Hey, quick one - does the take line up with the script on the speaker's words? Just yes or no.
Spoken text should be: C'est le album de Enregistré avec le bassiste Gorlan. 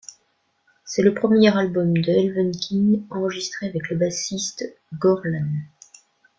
no